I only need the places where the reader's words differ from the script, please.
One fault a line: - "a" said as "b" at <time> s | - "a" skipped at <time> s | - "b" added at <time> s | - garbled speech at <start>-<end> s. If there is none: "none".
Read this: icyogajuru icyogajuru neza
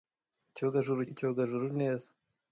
none